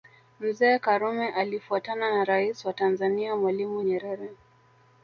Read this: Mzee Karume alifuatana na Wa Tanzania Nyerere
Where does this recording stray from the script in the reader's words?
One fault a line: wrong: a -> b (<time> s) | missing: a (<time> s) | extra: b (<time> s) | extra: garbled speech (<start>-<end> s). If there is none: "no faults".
extra: Rais (2.2 s)
extra: Mwalimu (3.4 s)